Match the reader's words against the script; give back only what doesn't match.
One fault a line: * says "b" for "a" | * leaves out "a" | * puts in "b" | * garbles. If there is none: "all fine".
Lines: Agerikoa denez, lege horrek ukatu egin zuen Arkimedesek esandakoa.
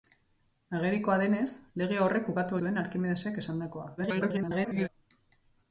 * leaves out "egin"
* garbles